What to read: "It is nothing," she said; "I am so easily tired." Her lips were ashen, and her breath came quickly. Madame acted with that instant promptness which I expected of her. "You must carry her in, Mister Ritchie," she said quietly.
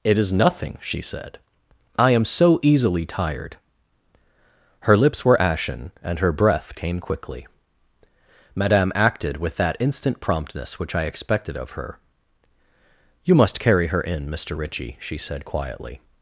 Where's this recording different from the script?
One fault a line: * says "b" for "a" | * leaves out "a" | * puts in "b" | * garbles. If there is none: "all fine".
all fine